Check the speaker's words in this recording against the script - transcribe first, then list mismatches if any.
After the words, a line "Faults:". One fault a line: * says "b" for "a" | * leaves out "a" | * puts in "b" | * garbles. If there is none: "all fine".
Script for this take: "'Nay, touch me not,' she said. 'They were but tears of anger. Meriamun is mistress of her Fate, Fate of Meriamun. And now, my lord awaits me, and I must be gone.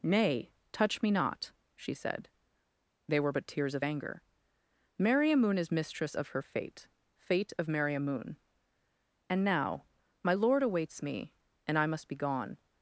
"'Nay, touch me not,' she said. 'They were but tears of anger. Meriamun is mistress of her Fate, Fate of Meriamun. And now, my lord awaits me, and I must be gone.
Faults:
all fine